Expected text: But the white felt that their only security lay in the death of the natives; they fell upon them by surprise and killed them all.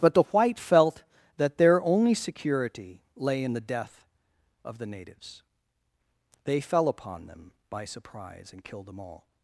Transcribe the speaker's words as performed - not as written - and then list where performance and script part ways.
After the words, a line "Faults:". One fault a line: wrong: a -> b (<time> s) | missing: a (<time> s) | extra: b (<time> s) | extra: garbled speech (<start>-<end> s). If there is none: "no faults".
But the white felt that their only security lay in the death of the natives; they fell upon them by surprise and killed them all.
Faults:
no faults